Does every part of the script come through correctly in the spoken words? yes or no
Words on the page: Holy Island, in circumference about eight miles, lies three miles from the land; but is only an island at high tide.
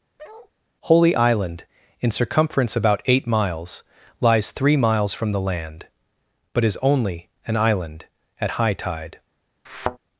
yes